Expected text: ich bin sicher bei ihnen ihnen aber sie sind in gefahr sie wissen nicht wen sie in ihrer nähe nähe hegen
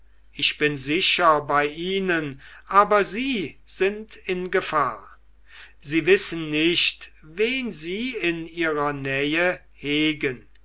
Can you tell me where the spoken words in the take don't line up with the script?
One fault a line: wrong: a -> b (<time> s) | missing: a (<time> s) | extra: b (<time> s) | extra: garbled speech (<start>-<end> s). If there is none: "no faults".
missing: ihnen (2.4 s)
missing: nähe (9.6 s)